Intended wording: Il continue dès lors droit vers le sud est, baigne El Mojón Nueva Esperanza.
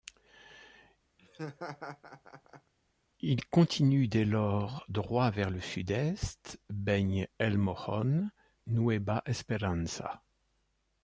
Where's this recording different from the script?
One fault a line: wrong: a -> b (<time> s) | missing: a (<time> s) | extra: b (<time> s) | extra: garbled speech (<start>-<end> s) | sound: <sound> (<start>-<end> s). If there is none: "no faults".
sound: laugh (1.2-2.7 s)